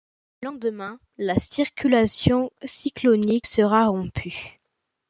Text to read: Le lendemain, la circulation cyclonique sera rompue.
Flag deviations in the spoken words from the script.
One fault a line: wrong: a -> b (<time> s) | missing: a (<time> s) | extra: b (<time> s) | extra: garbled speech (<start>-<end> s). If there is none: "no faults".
no faults